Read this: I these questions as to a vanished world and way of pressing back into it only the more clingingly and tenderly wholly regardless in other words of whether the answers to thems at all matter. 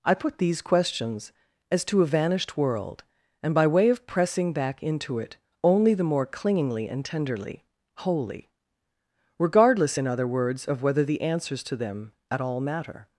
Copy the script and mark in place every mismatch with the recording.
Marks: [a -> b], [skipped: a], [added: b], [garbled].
I [added: put] these questions as to a vanished world and [added: by] way of pressing back into it only the more clingingly and tenderly wholly regardless in other words of whether the answers to [thems -> them] at all matter.